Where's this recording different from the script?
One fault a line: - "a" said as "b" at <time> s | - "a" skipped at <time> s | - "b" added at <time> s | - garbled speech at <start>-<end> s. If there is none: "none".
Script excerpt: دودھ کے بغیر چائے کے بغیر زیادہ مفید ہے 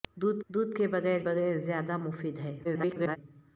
- "دودھ" added at 0.5 s
- "چائے کے" skipped at 1.2 s
- garbled speech at 2.6-3.2 s